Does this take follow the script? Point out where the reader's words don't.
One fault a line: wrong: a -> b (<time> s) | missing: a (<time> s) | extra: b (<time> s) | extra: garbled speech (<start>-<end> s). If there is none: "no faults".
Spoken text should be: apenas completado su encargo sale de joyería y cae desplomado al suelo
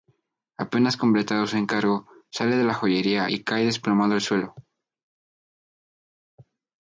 extra: la (2.6 s)